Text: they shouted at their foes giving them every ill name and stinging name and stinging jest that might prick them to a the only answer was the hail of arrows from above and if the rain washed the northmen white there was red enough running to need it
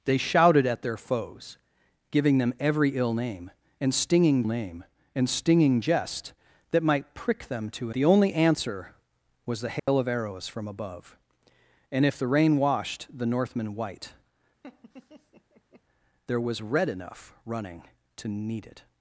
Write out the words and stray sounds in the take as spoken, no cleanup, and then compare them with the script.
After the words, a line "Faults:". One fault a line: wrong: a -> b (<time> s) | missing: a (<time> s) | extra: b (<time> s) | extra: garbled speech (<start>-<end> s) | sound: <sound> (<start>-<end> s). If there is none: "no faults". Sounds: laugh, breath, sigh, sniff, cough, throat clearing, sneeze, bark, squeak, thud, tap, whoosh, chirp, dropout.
they shouted at their foes giving them every ill name and stinging name and stinging jest that might prick them to a the only answer was the hail of arrows from above and if the rain washed the northmen white there was red enough running to need it
Faults:
sound: dropout (9.8-9.9 s)
sound: laugh (14.6-15.8 s)